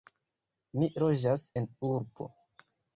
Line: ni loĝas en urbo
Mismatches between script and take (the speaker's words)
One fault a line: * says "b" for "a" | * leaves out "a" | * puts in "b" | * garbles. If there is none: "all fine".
all fine